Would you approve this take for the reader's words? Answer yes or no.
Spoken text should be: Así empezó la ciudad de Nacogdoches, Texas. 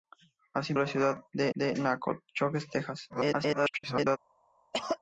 no